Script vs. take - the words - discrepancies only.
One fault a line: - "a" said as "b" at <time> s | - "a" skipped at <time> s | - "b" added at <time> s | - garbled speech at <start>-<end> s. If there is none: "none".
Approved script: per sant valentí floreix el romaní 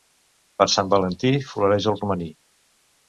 none